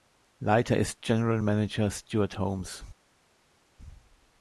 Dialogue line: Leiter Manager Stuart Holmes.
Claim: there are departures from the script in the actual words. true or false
true